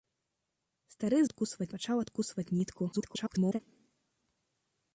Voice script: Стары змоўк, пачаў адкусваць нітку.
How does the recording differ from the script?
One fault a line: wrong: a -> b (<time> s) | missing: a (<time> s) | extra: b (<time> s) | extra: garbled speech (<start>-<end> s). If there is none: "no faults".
wrong: змоўк -> адкусваць (1.3 s)
extra: garbled speech (2.9-3.6 s)